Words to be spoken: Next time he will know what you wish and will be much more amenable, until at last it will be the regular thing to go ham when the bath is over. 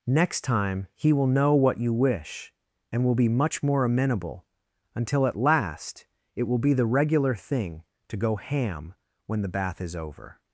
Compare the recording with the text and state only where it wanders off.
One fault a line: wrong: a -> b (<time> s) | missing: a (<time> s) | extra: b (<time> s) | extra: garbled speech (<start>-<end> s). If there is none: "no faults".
no faults